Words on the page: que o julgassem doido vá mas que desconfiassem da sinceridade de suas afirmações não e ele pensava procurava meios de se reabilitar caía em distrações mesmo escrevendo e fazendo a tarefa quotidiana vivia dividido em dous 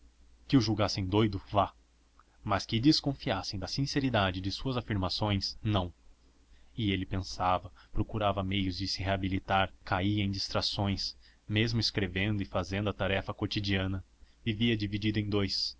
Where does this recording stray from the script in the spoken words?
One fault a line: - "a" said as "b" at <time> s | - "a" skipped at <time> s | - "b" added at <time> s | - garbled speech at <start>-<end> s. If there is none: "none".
none